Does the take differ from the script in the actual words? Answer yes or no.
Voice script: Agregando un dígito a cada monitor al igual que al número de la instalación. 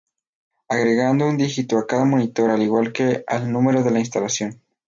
no